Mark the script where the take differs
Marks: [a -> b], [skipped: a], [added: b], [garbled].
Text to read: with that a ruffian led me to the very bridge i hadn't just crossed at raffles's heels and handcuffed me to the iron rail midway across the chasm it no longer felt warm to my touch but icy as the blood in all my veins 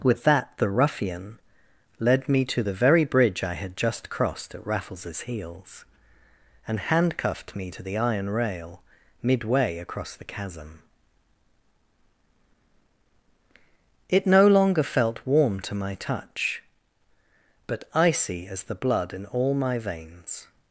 with that [a -> the] ruffian led me to the very bridge i [hadn't -> had] just crossed at raffles's heels and handcuffed me to the iron rail midway across the chasm it no longer felt warm to my touch but icy as the blood in all my veins